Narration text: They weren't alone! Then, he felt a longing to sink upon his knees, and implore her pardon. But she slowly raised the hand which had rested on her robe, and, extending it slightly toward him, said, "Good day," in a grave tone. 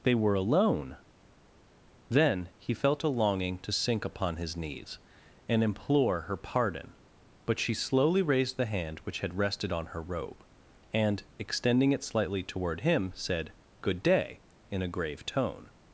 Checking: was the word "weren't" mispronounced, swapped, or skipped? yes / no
yes